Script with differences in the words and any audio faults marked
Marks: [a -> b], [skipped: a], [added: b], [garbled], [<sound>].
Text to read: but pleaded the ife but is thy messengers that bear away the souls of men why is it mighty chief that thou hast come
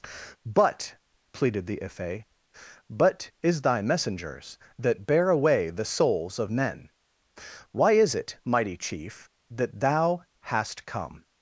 but pleaded the ife but is thy messengers that bear away the souls of men why is it mighty chief that thou hast come